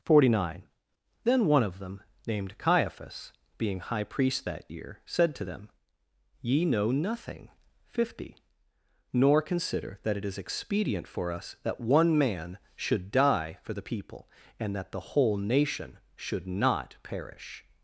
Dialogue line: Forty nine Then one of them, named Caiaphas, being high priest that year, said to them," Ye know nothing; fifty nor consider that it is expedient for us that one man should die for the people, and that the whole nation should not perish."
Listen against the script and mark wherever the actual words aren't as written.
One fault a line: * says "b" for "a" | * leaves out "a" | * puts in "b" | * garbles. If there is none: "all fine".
all fine